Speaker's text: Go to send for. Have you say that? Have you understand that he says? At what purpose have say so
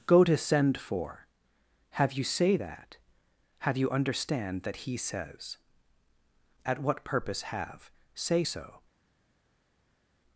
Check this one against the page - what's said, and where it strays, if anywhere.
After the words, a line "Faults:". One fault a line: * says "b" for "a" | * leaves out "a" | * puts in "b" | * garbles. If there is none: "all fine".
Go to send for. Have you say that? Have you understand that he says? At what purpose have say so
Faults:
all fine